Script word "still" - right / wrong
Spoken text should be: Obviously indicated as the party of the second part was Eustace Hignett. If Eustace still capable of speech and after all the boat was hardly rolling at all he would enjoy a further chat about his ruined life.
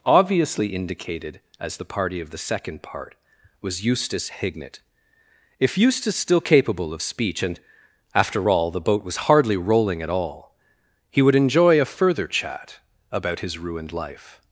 right